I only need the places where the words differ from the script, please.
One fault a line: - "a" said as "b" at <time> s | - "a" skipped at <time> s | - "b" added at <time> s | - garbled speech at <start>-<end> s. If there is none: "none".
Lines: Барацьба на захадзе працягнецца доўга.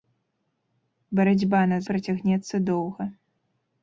- "захадзе" skipped at 1.8 s